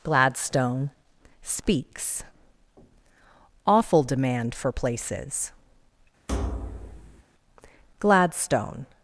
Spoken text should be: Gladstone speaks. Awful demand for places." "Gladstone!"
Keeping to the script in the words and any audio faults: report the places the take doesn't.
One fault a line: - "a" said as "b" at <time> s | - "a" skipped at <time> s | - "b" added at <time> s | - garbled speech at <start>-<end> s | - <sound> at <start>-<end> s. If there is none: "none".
- thud at 6.3-7.2 s